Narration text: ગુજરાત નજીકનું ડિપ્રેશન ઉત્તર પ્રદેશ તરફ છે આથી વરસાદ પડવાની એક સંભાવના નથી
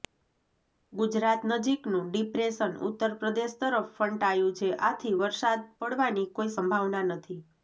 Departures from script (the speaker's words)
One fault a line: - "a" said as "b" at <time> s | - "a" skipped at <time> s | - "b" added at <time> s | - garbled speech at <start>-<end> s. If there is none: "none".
- "ફંટાયું" added at 4.0 s
- "એક" said as "કોઈ" at 6.3 s